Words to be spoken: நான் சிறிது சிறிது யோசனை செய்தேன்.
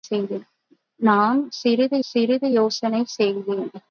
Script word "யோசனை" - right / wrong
right